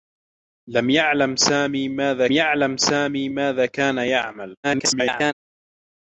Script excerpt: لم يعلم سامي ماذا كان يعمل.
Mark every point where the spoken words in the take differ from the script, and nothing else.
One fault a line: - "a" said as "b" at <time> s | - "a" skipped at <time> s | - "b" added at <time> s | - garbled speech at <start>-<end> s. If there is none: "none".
- "يعلم سامي ماذا" added at 2.3 s
- garbled speech at 4.6-5.3 s